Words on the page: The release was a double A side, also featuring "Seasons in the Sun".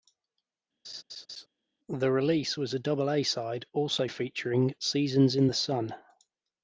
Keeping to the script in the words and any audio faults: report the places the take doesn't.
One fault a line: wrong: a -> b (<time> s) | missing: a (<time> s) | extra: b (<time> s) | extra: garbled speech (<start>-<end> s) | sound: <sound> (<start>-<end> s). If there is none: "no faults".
sound: laugh (0.8-1.5 s)